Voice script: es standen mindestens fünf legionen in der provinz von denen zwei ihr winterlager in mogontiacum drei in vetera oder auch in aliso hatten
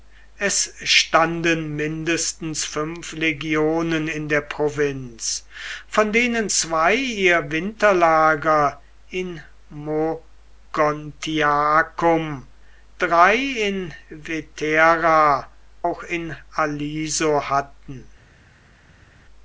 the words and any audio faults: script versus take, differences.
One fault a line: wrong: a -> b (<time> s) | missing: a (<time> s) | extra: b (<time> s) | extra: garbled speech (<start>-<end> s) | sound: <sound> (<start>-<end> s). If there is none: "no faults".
missing: oder (15.5 s)